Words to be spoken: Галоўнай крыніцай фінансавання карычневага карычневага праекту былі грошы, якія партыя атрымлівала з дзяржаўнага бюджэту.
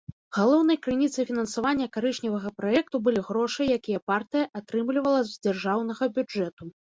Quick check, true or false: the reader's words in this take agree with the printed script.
false